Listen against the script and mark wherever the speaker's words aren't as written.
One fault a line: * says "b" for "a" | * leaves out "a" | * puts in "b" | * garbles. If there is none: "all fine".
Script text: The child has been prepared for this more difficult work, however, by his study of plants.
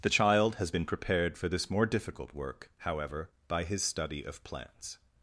all fine